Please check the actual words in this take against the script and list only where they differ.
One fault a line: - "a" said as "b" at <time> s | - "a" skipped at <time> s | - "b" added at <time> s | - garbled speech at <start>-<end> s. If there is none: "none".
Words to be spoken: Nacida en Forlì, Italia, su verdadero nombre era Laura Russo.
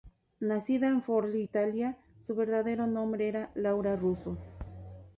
none